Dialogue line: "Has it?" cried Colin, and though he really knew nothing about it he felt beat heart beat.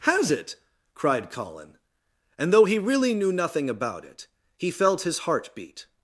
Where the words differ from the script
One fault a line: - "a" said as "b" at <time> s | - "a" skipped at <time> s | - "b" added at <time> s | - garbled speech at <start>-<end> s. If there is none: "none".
- "beat" said as "his" at 5.0 s